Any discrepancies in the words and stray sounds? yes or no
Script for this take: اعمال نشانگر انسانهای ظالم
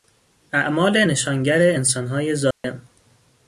yes